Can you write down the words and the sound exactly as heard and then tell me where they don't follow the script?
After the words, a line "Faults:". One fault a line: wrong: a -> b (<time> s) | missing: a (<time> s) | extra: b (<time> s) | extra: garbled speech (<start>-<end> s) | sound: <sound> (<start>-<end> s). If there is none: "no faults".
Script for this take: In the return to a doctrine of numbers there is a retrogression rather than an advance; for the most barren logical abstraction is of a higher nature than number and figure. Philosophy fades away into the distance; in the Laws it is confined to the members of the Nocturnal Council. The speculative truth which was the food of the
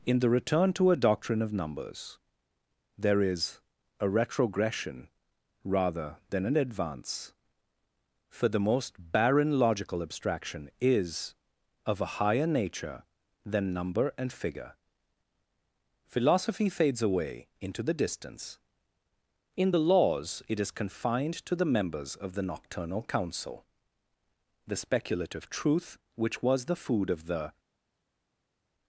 In the return to a doctrine of numbers there is a retrogression rather than an advance; for the most barren logical abstraction is of a higher nature than number and figure. Philosophy fades away into the distance; in the Laws it is confined to the members of the Nocturnal Council. The speculative truth which was the food of the
Faults:
no faults